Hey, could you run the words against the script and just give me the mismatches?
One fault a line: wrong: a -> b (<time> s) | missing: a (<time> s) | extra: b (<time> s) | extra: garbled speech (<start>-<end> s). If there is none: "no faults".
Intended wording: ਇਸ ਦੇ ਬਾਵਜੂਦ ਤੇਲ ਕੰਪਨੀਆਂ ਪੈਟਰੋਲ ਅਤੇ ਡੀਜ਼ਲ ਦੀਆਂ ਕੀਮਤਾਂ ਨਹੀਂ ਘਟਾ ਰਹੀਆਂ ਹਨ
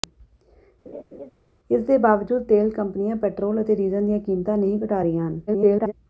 extra: garbled speech (5.5-5.9 s)